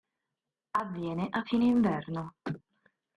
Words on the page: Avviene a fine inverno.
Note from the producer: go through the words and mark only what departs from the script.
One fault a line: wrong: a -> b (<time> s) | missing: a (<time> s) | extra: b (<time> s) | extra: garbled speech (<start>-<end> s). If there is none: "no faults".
no faults